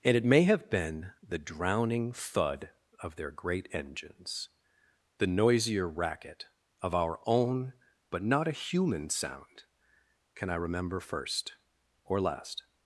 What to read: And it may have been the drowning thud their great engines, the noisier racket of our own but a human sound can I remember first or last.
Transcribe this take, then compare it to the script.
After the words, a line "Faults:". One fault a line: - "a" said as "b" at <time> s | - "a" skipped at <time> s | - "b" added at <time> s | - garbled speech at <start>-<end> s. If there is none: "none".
And it may have been the drowning thud of their great engines, the noisier racket of our own but not a human sound can I remember first or last.
Faults:
- "of" added at 3.0 s
- "not" added at 8.2 s